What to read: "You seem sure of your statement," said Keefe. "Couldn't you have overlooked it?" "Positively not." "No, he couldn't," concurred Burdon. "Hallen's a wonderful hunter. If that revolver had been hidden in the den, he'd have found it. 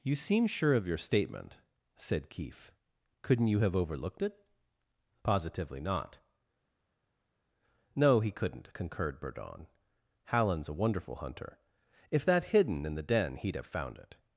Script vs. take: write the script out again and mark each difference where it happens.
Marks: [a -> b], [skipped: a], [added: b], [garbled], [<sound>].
"You seem sure of your statement," said Keefe. "Couldn't you have overlooked it?" "Positively not." "No, he couldn't," concurred Burdon. "Hallen's a wonderful hunter. If that [skipped: revolver had been] hidden in the den, he'd have found it.